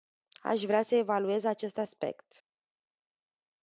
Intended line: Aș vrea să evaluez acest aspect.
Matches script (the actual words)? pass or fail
pass